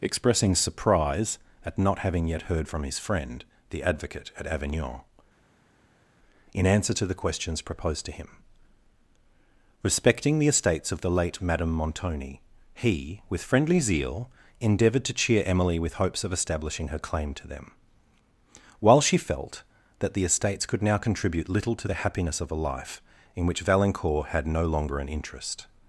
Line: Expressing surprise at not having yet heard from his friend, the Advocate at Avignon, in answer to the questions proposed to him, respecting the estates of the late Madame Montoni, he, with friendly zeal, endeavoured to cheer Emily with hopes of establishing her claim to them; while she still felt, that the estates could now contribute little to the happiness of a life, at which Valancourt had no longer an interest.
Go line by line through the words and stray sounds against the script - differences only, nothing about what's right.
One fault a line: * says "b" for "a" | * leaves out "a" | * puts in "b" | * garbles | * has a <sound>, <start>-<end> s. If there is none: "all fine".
* leaves out "still"
* says "in" for "at"